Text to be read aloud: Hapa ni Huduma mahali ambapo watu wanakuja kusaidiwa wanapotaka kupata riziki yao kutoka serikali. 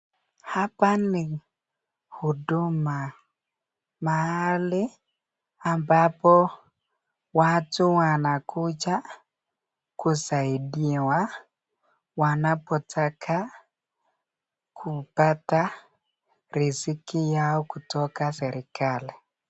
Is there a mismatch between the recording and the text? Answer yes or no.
no